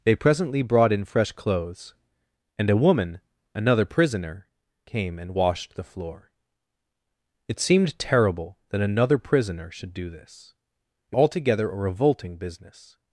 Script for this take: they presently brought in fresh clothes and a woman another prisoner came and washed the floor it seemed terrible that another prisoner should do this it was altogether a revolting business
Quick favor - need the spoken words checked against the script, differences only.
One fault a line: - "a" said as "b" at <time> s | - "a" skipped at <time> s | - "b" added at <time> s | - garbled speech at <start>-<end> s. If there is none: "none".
- "was" skipped at 11.2 s